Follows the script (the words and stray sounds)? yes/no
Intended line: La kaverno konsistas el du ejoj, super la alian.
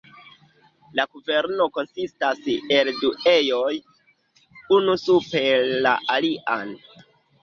no